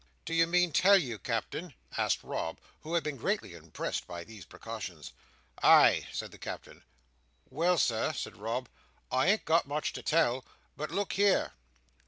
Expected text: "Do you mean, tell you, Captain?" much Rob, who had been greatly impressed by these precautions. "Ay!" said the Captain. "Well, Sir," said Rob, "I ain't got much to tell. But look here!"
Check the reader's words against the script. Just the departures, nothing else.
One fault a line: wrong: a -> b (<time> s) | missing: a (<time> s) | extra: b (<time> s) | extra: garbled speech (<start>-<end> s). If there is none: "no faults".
wrong: much -> asked (2.0 s)